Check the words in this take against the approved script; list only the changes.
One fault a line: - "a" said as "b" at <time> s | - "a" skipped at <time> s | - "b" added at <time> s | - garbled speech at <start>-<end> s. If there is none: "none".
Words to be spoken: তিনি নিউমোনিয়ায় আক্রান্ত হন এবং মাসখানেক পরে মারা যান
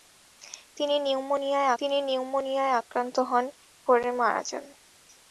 - "তিনি নিউমোনিয়ায়" added at 1.8 s
- "এবং মাসখানেক" skipped at 3.5 s